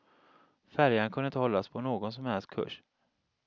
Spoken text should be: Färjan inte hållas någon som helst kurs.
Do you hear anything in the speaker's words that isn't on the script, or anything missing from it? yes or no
yes